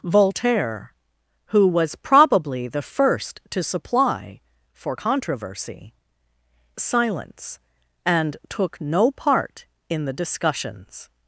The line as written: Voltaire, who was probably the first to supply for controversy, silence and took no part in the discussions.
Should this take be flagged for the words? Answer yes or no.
no